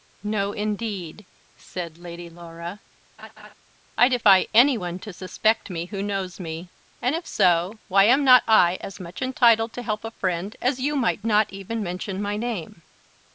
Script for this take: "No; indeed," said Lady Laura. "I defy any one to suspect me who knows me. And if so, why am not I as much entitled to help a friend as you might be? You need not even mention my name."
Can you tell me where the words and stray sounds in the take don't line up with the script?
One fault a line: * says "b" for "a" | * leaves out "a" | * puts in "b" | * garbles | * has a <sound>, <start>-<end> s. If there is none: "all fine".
* has a laugh, 3.2-3.5 s
* leaves out "be You need"